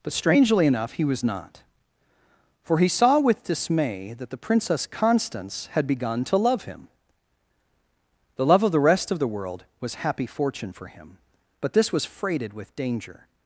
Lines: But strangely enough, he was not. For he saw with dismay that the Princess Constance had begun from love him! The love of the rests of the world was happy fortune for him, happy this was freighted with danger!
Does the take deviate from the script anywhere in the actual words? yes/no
yes